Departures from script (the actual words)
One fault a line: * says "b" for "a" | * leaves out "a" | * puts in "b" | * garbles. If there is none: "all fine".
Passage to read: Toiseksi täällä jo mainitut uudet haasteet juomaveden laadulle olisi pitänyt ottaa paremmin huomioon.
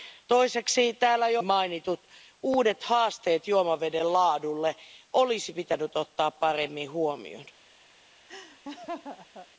all fine